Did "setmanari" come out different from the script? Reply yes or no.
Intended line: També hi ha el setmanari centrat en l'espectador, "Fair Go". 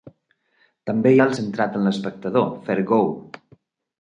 yes